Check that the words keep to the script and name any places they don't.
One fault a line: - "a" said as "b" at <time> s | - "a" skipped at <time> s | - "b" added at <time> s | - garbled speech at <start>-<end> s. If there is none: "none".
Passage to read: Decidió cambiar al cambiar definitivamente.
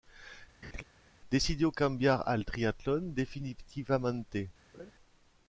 - "cambiar" said as "triatlón" at 2.5 s